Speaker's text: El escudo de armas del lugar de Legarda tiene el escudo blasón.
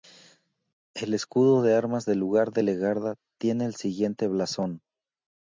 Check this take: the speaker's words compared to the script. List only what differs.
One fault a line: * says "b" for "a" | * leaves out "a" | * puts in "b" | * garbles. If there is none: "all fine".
* says "siguiente" for "escudo"